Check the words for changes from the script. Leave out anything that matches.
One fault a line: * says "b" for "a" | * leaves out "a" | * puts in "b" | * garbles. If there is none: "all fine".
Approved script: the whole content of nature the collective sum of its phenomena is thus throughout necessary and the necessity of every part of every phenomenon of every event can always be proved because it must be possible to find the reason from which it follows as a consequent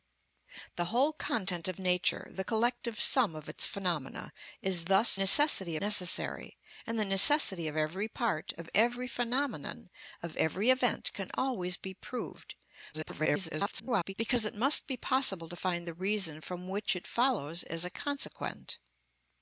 * says "necessity" for "throughout"
* garbles